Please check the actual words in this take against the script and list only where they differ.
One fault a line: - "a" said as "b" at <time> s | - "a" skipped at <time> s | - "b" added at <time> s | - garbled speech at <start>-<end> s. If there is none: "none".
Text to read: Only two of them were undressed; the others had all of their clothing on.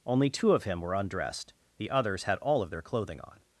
- "them" said as "him" at 0.6 s